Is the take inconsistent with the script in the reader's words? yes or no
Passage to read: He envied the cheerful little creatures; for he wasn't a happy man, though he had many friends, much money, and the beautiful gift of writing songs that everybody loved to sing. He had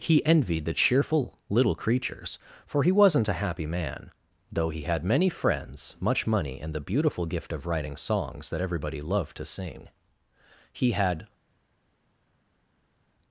no